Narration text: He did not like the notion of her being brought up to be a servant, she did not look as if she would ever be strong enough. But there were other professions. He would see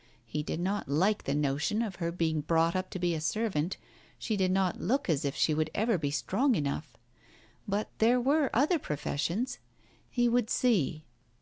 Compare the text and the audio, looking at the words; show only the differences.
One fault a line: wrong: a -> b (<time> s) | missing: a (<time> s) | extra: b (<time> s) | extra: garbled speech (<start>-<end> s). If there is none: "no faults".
no faults